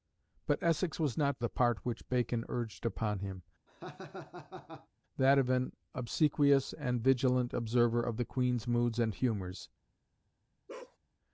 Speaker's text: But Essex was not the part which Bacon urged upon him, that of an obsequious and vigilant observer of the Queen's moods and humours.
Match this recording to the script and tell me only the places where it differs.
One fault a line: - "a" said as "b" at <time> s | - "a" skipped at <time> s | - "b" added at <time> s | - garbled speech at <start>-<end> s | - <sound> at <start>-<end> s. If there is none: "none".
- laugh at 3.7-4.9 s
- bark at 10.7-11.0 s